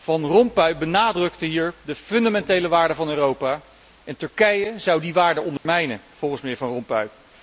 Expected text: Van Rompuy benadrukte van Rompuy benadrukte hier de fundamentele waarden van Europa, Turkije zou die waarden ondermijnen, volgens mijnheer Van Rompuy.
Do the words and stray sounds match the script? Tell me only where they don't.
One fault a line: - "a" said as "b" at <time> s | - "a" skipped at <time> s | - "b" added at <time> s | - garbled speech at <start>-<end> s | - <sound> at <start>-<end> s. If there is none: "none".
- "van Rompuy benadrukte" skipped at 1.4 s
- "en" added at 4.0 s
- dropout at 5.6-5.7 s